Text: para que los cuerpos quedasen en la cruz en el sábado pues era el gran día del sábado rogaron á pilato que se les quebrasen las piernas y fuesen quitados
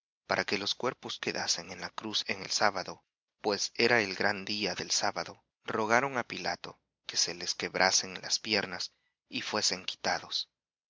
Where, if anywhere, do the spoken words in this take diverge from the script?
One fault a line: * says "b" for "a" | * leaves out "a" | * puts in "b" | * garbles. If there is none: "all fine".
all fine